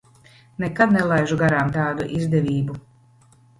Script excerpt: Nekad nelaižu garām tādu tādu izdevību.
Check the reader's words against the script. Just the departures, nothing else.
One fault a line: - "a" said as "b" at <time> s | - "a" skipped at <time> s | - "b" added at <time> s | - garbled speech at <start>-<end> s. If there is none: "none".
- "tādu" skipped at 2.1 s